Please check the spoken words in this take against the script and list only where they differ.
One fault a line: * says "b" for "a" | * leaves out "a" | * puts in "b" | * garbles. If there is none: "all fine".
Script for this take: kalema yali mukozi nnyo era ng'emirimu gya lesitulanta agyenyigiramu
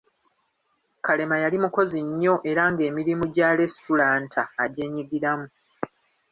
all fine